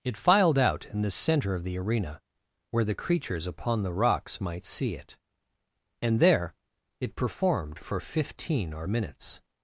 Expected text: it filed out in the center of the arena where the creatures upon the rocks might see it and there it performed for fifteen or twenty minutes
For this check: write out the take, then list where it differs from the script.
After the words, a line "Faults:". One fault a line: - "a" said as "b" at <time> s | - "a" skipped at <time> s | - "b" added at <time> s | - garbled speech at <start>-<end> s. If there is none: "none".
it filed out in the center of the arena where the creatures upon the rocks might see it and there it performed for fifteen or minutes
Faults:
- "twenty" skipped at 8.9 s